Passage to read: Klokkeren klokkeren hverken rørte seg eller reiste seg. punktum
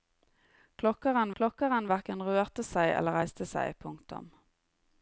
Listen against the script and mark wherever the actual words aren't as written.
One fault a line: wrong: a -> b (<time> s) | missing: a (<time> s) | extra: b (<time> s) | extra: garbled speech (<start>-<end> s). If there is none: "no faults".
no faults